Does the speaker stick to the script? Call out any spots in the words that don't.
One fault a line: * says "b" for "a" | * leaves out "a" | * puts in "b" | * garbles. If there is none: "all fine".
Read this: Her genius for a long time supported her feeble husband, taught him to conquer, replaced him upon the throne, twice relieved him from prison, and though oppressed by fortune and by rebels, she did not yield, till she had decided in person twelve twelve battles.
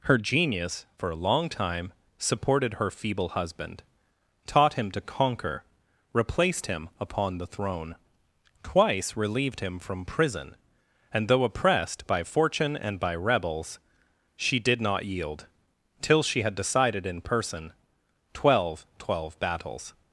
all fine